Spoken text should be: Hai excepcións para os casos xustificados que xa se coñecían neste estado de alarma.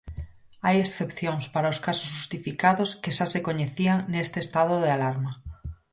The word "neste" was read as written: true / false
true